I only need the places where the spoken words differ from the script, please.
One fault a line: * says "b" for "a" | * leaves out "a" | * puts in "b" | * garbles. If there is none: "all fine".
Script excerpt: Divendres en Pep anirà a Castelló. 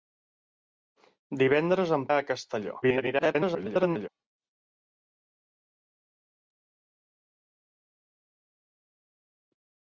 * leaves out "Pep anirà"
* garbles